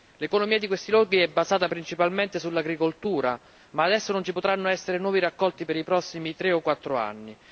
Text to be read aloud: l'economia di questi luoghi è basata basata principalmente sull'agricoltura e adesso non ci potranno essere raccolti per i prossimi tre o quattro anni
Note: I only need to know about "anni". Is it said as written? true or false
true